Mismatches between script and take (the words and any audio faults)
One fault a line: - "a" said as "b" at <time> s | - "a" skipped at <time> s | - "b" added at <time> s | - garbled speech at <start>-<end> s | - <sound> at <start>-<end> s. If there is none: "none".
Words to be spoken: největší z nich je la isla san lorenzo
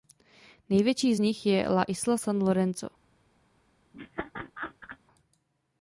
- laugh at 3.9-5.0 s